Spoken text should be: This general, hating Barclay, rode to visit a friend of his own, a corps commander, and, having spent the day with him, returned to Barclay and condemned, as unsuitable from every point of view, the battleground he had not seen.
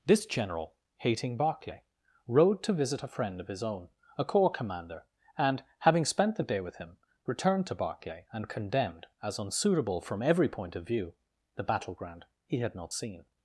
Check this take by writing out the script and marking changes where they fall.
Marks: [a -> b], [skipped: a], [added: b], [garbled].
This general, hating Barclay, rode to visit a friend of his own, a corps commander, and, having spent the day with him, returned to Barclay and condemned, as unsuitable from every point of view, the battleground he had not seen.